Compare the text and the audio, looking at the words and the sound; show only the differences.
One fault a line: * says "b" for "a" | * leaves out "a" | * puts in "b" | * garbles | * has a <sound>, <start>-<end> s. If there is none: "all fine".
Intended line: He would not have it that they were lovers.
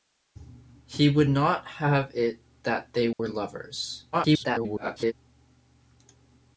* has a dropout, 3.1-3.2 s
* garbles